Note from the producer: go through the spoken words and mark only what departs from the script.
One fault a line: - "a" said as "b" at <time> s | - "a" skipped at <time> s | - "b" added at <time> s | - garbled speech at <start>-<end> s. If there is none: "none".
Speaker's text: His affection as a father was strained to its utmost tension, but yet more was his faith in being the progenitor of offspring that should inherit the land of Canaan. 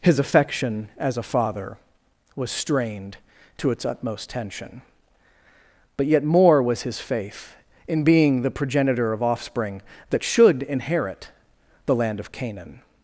none